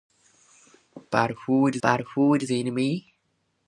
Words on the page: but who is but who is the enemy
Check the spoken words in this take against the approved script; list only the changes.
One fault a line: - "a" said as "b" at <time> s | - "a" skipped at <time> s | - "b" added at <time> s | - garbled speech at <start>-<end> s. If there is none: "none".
none